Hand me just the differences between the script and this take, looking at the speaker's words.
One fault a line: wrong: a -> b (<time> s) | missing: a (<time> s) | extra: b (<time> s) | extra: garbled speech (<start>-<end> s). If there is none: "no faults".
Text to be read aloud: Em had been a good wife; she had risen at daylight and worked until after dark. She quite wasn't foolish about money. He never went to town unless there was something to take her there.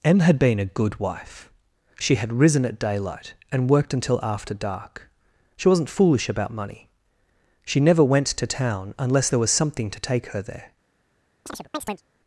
missing: quite (5.7 s)
wrong: He -> She (7.6 s)